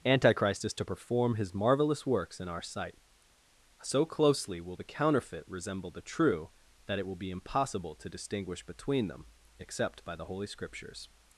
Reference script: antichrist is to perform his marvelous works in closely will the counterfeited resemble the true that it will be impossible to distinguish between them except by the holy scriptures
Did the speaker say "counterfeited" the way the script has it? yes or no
no